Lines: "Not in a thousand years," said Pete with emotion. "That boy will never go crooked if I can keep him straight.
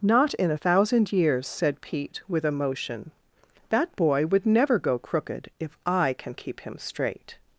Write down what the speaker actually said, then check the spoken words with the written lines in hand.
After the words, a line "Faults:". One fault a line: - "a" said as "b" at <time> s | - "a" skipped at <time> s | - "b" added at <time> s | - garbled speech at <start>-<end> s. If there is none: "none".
"Not in a thousand years," said Pete with emotion. "That boy would never go crooked if I can keep him straight.
Faults:
- "will" said as "would" at 4.3 s